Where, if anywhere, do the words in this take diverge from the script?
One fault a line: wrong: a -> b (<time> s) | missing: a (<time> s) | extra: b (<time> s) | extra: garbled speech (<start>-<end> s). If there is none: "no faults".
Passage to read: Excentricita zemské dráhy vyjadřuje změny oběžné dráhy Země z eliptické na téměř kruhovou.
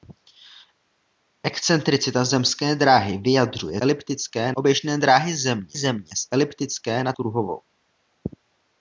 wrong: změny -> eliptické (3.8 s)
extra: Země (5.7 s)
missing: téměř (7.1 s)